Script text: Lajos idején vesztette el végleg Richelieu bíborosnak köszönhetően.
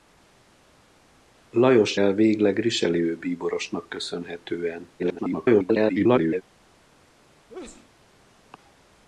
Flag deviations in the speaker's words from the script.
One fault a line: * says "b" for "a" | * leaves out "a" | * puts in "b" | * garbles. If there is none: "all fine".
* leaves out "idején vesztette"
* garbles